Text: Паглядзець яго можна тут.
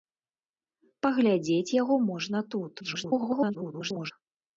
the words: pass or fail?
fail